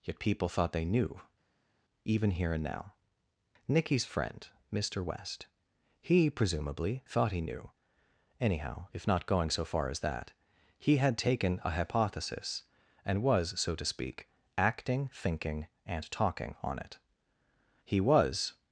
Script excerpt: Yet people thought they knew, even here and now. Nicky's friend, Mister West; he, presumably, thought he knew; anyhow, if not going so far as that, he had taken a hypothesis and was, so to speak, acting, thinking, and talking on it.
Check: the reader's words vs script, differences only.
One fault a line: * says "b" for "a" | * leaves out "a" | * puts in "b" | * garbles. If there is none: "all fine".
* puts in "He was"